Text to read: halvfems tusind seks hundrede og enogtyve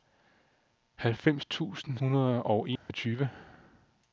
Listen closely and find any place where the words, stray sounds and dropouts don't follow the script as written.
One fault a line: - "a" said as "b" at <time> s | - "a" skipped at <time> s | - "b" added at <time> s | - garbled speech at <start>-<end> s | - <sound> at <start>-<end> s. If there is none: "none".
- "seks" skipped at 2.0 s
- dropout at 2.8-2.9 s